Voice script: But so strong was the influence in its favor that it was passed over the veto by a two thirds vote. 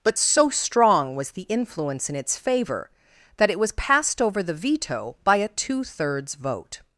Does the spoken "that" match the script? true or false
true